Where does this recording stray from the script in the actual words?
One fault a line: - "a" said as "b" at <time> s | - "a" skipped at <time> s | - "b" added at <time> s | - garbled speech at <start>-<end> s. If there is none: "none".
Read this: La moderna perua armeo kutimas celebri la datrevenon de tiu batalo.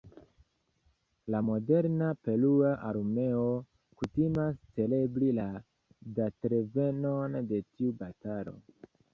none